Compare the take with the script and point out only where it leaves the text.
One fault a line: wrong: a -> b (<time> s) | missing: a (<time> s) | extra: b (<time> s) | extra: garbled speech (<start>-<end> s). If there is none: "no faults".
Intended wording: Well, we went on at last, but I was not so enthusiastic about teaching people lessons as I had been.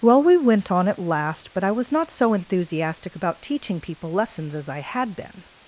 no faults